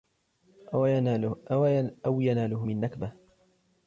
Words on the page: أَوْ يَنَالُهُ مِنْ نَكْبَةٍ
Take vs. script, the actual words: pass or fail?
pass